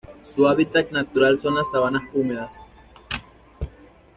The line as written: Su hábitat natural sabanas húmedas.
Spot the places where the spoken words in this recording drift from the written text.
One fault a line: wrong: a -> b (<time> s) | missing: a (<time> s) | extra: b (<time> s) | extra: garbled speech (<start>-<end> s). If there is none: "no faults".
extra: son las (1.4 s)